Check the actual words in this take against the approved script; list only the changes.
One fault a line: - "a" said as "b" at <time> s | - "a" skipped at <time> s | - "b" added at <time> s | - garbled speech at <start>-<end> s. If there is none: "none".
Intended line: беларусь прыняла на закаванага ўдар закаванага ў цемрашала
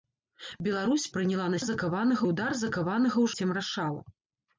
none